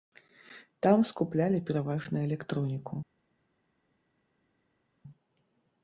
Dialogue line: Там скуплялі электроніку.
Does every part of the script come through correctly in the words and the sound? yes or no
no